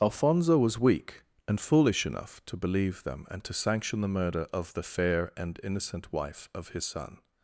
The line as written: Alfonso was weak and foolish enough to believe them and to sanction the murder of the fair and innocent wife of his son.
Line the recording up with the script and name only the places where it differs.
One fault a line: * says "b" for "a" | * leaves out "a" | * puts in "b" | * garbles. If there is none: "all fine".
all fine